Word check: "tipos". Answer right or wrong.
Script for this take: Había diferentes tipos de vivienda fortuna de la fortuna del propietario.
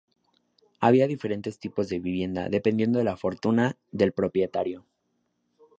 right